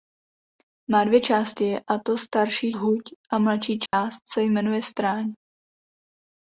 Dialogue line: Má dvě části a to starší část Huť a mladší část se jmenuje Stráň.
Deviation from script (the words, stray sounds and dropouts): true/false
true